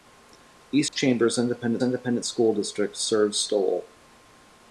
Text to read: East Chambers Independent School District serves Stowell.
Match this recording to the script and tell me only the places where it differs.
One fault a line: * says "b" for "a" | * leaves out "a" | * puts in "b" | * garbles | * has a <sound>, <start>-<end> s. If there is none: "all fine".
* has a dropout, 0.9-0.9 s
* puts in "Independent"